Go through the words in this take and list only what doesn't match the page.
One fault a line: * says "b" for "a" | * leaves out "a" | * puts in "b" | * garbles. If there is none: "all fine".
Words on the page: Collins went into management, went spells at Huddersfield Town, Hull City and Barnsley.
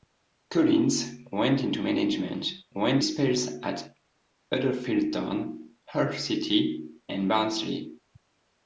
all fine